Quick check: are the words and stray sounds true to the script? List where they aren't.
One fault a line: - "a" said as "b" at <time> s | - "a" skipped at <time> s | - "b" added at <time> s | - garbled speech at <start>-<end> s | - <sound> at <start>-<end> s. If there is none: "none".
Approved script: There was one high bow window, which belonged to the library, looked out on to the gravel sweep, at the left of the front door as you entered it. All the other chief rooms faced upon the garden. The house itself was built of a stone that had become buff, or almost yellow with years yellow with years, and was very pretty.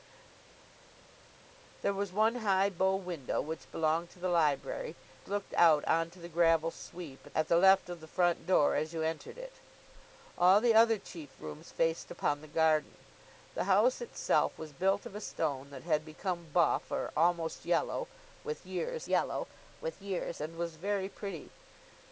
none